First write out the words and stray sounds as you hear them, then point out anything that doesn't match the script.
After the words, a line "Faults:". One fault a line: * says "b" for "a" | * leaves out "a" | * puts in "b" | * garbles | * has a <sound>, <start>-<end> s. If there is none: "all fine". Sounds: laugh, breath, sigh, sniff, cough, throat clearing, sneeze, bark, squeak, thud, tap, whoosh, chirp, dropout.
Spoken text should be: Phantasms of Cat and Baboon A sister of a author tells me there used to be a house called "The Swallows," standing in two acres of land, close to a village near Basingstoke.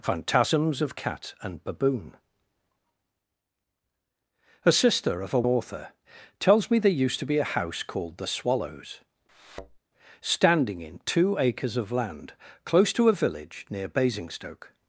Phantasms of Cat and Baboon A sister of a author tells me there used to be a house called "The Swallows," standing in two acres of land, close to a village near Basingstoke.
Faults:
* has a thud, 9.3-9.8 s